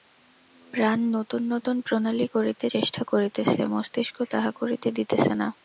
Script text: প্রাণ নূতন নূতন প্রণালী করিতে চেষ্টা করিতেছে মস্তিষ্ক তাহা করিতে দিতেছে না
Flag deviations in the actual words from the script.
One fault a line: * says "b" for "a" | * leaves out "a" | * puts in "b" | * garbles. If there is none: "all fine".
all fine